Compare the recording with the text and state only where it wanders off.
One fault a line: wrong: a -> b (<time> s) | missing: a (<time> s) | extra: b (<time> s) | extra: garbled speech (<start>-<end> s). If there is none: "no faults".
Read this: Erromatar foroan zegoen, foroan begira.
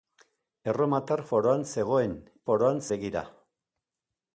no faults